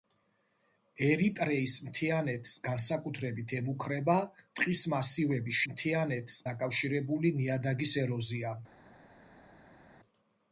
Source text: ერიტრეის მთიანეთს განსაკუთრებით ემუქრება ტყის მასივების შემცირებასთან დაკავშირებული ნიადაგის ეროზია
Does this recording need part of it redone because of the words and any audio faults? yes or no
yes